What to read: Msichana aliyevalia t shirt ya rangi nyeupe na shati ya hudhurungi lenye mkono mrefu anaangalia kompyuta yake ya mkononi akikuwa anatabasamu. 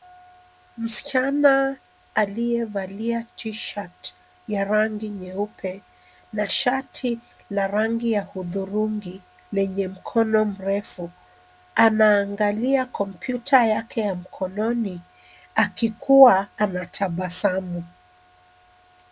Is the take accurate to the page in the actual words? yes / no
no